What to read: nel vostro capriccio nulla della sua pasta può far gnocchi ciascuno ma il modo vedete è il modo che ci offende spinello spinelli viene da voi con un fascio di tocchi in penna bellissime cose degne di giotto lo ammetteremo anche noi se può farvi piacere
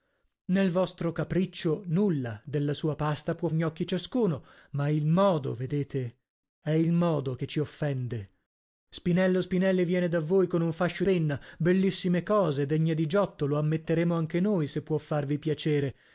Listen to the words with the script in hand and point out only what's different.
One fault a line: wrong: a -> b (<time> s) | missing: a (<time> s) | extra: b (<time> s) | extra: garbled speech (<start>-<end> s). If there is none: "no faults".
missing: far (3.5 s)
missing: di tocchi in (11.0 s)